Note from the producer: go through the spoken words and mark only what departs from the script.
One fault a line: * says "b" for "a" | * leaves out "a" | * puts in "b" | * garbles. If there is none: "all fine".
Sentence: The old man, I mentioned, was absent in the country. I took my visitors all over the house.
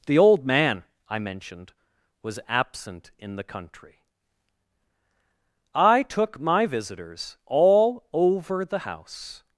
all fine